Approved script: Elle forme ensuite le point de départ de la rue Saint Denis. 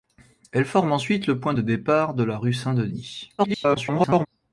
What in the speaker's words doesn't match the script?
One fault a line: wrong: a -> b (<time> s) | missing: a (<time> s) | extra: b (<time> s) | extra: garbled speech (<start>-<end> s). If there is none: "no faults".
extra: garbled speech (3.4-4.3 s)